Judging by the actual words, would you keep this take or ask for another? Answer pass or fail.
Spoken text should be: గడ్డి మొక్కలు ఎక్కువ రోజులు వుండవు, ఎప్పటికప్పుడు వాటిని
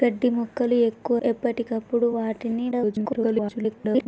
fail